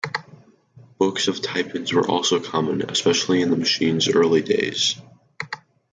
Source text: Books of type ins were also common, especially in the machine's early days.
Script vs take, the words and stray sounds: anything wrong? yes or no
no